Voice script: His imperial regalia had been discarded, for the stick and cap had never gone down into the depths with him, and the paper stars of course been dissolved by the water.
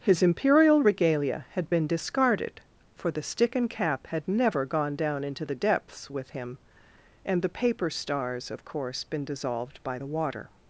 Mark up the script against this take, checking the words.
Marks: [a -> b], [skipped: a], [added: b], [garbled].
His imperial regalia had been discarded, for the stick and cap had never gone down into the depths with him, and the paper stars of course been dissolved by the water.